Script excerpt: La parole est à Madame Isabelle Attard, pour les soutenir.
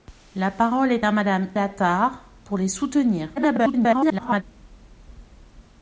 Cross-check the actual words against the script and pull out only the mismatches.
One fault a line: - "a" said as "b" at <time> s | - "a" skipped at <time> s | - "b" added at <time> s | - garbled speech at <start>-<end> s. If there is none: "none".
- "Isabelle" skipped at 1.5 s
- garbled speech at 3.4-4.4 s